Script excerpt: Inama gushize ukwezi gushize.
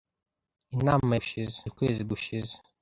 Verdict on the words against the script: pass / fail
pass